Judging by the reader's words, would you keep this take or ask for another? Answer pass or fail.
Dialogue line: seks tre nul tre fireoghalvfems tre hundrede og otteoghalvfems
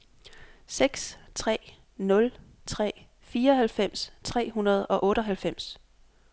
pass